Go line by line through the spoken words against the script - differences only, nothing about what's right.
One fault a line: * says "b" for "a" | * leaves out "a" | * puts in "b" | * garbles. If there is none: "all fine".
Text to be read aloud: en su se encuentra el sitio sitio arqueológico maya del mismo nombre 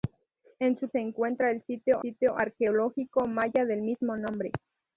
all fine